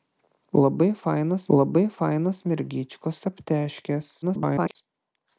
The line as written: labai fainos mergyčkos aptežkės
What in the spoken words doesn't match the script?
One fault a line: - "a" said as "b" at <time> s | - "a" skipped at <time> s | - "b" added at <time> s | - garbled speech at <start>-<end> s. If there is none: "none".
- "labai fainos" added at 1.6 s
- garbled speech at 4.2-4.8 s